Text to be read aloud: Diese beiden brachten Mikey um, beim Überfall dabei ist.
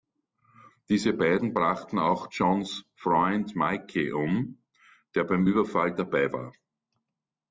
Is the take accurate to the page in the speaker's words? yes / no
no